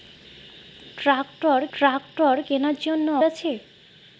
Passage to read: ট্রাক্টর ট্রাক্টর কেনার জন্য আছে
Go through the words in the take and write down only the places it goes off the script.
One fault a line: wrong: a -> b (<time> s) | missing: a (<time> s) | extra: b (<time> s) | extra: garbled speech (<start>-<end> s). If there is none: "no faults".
no faults